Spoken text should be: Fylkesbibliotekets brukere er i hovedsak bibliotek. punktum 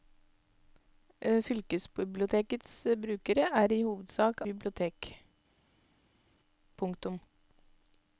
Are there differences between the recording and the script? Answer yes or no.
no